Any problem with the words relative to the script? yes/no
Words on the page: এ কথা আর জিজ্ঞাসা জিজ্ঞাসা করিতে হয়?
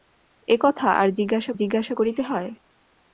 no